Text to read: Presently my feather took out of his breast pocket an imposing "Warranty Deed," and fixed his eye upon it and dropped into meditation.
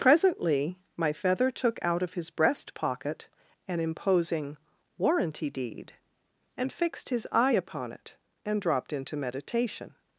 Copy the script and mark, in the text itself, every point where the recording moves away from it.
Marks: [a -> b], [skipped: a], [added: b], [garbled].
Presently my feather took out of his breast pocket an imposing "Warranty Deed," and fixed his eye upon it and dropped into meditation.